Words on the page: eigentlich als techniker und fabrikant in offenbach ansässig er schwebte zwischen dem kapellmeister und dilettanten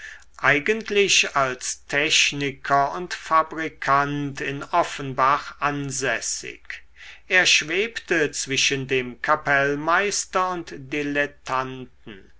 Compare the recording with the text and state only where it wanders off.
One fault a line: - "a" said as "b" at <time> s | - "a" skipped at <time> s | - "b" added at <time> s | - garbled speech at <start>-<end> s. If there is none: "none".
none